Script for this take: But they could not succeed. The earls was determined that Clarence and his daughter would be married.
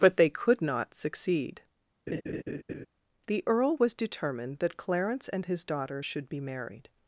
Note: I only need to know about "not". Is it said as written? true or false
true